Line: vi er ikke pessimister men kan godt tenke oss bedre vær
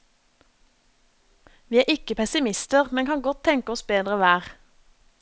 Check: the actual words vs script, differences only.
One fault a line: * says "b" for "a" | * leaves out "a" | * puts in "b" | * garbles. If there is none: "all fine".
all fine